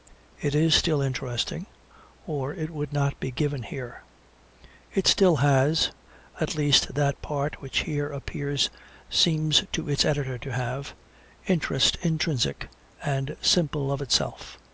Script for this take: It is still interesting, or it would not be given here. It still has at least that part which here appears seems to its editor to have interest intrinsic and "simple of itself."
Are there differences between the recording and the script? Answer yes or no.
no